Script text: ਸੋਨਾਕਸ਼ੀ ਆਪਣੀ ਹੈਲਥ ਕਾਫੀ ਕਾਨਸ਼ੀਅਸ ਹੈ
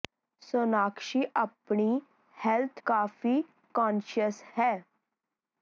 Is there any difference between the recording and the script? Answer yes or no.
no